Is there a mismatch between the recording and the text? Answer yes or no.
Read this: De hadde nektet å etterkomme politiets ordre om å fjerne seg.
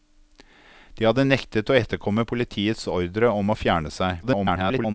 yes